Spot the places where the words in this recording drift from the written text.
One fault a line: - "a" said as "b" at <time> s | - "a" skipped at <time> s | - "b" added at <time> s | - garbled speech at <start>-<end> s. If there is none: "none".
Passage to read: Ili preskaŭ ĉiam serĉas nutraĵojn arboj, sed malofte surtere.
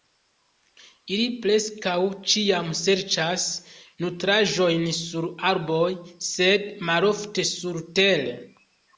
- "sur" added at 5.0 s